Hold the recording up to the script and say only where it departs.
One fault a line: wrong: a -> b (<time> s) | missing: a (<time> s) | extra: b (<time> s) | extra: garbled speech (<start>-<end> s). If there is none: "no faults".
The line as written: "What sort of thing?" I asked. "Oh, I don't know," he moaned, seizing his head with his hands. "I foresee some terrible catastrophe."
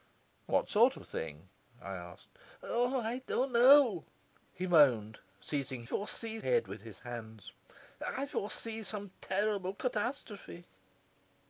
wrong: his -> foresee (5.8 s)